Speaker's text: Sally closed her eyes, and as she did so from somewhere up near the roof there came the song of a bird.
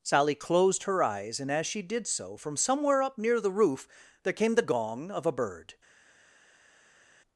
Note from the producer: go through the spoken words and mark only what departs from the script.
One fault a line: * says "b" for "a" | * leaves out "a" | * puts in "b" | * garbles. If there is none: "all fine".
* says "gong" for "song"